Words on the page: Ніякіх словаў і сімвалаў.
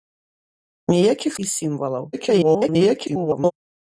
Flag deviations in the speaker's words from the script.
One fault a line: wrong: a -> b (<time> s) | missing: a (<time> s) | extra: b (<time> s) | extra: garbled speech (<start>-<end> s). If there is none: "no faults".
missing: словаў (1.3 s)
extra: garbled speech (2.1-3.5 s)